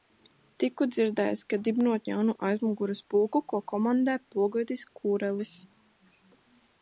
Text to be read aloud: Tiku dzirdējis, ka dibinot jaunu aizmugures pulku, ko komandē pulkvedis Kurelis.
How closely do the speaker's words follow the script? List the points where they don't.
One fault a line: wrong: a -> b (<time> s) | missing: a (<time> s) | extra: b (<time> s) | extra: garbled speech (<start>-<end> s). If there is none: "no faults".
no faults